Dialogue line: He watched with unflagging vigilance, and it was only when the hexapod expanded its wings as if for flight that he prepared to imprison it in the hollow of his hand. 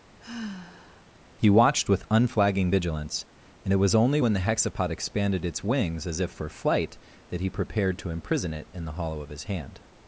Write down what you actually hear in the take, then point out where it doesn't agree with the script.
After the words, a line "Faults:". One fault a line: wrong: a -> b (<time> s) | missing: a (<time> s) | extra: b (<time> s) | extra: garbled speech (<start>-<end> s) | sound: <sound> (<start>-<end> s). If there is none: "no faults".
He watched with unflagging vigilance, and it was only when the hexapod expanded its wings as if for flight that he prepared to imprison it in the hollow of his hand.
Faults:
sound: sigh (0.2-1.1 s)